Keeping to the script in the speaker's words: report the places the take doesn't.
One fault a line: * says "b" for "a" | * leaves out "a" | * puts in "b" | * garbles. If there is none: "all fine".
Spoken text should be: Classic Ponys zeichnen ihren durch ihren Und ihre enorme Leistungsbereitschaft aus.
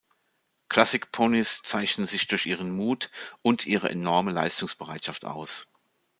* says "sich" for "ihren"
* puts in "Mut"